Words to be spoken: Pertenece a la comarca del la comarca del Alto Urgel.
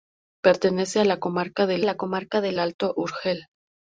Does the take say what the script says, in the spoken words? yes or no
yes